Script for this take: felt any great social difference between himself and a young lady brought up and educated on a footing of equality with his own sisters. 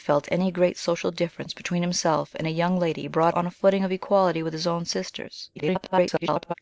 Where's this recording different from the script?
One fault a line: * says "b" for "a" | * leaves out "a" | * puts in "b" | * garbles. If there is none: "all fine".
* leaves out "up and educated"
* garbles